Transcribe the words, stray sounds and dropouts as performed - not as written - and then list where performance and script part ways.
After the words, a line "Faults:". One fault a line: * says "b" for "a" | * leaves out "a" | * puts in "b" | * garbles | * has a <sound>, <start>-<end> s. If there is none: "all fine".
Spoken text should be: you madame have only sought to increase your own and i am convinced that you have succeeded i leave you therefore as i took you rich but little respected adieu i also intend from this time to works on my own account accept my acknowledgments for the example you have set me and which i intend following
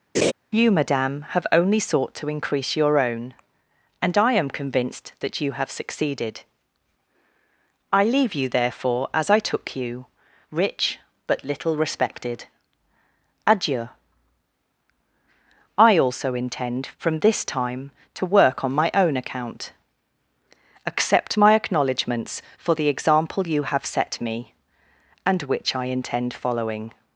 you madame have only sought to increase your own and i am convinced that you have succeeded i leave you therefore as i took you rich but little respected adieu i also intend from this time to work on my own account accept my acknowledgments for the example you have set me and which i intend following
Faults:
* has a laugh, 0.1-0.3 s
* says "work" for "works"